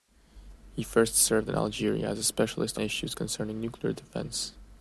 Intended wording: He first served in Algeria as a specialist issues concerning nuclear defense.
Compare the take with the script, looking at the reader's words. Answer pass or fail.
pass